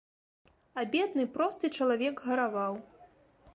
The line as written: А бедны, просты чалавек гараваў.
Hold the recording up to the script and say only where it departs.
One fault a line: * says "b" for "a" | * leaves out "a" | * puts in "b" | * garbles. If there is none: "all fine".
all fine